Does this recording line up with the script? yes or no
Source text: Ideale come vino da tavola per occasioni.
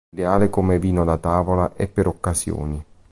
no